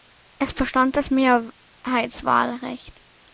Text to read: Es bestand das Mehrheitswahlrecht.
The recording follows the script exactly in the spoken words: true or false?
true